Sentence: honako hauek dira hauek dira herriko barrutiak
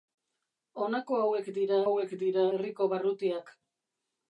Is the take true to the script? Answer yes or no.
yes